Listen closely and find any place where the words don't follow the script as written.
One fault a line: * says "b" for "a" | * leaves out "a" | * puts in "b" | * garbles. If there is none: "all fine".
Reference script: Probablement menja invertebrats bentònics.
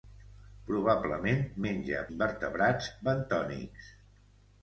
all fine